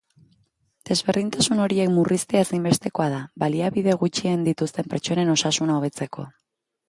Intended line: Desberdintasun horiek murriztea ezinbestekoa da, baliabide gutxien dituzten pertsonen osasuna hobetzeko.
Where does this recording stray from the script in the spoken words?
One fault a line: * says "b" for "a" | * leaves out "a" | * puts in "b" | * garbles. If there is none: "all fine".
all fine